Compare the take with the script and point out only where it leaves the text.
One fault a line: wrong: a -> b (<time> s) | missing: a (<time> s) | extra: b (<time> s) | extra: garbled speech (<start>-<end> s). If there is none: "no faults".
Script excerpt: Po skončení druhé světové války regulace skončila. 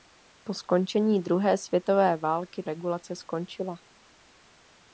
no faults